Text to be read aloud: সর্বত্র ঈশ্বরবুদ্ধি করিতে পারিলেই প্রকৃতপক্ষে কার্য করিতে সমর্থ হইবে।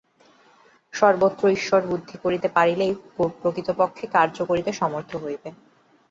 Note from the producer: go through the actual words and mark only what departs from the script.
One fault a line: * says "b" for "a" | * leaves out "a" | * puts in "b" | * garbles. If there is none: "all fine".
all fine